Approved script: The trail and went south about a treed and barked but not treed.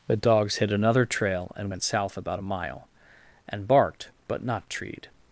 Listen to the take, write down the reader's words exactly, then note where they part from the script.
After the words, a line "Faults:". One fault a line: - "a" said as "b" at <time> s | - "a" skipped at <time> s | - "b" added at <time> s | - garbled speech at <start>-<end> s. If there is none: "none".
The dogs hit another trail and went south about a mile and barked but not treed.
Faults:
- "dogs hit another" added at 0.2 s
- "treed" said as "mile" at 2.4 s